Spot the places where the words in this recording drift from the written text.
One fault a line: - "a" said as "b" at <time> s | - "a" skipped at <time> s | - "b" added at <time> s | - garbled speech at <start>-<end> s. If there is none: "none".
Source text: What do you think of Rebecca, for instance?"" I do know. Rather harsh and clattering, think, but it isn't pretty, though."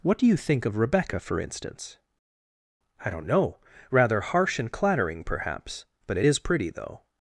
- "do" said as "don't" at 3.1 s
- "think" said as "perhaps" at 5.2 s
- "isn't" said as "is" at 6.2 s